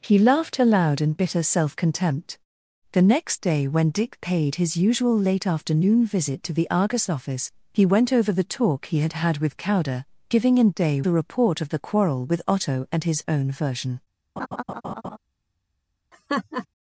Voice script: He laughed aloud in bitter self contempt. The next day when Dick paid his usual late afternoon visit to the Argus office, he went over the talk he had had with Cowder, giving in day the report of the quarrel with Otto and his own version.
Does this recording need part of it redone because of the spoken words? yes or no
no